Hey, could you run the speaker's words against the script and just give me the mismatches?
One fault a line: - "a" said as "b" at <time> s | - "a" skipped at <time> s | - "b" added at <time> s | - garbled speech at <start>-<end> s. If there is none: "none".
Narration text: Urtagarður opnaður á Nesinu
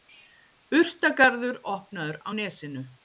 none